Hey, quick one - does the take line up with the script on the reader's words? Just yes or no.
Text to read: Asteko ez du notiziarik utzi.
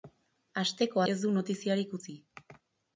yes